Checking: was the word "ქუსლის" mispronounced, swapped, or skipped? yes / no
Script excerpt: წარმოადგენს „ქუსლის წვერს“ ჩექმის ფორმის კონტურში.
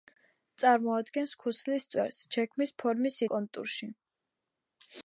no